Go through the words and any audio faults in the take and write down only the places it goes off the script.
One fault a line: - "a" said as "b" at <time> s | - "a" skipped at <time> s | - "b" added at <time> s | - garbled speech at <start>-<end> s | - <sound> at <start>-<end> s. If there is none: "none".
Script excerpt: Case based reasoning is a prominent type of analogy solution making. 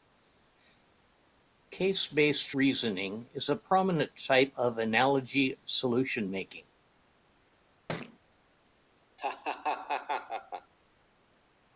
- thud at 7.9-8.2 s
- laugh at 9.2-10.7 s